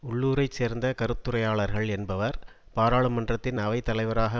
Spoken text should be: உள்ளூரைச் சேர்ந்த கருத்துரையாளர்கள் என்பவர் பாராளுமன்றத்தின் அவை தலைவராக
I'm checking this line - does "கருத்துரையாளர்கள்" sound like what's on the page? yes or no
yes